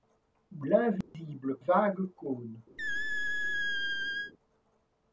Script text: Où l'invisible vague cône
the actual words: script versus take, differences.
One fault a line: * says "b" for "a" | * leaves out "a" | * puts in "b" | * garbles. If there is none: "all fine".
all fine